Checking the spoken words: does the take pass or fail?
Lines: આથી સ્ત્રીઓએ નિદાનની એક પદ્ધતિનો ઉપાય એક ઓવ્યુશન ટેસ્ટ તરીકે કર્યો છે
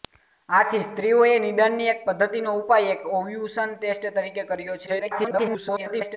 fail